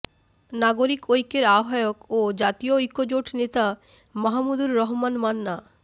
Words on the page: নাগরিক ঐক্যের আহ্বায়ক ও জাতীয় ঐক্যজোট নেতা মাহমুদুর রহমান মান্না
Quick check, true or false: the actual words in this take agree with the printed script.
true